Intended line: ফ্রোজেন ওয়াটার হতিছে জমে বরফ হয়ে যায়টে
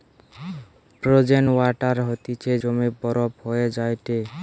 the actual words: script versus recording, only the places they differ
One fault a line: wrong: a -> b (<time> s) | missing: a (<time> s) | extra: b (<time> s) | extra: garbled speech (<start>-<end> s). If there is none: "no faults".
no faults